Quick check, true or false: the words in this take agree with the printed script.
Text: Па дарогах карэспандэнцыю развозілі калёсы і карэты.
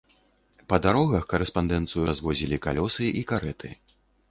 true